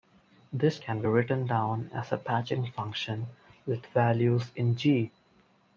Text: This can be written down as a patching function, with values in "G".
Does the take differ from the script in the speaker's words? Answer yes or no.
no